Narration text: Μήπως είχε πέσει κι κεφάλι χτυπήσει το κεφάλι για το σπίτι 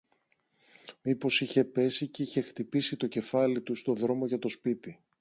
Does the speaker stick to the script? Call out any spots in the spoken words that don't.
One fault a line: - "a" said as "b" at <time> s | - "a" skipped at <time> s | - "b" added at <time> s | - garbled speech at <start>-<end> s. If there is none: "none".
- "κεφάλι" said as "είχε" at 2.2 s
- "του στο δρόμο" added at 3.6 s